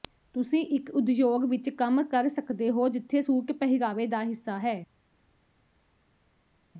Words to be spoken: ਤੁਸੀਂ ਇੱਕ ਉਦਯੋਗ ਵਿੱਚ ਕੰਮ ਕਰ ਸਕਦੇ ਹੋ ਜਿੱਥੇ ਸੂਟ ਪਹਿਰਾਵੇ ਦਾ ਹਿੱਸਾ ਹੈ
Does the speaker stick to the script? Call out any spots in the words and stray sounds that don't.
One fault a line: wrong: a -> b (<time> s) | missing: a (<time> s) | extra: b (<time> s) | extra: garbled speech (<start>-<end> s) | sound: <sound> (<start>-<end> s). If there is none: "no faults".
no faults